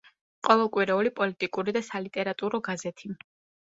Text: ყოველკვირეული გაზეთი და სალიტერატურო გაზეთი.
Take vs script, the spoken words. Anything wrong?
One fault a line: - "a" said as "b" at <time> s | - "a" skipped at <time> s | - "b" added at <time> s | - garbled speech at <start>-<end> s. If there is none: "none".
- "გაზეთი" said as "პოლიტიკური" at 1.2 s